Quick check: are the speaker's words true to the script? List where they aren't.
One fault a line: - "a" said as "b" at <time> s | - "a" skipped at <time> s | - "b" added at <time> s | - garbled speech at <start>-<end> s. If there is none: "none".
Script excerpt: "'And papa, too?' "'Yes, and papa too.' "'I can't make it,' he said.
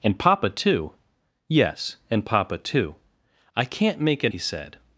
none